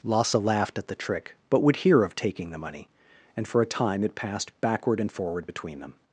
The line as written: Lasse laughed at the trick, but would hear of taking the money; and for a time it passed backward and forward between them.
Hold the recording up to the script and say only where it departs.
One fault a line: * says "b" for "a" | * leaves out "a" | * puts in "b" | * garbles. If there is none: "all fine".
all fine